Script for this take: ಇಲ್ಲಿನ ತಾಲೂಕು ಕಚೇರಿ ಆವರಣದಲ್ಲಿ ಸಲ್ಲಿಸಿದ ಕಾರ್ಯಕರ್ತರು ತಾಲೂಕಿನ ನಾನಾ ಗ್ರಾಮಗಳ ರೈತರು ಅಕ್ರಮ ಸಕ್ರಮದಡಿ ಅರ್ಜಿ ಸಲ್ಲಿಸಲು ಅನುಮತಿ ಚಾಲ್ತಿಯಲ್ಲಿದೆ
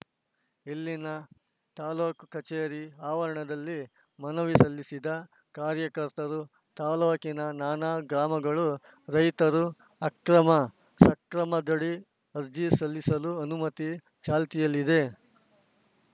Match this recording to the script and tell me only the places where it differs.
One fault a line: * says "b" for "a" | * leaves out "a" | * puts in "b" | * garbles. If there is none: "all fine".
* puts in "ಮನವಿ"